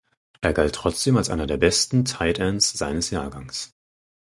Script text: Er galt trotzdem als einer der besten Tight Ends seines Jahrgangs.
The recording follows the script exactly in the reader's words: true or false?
true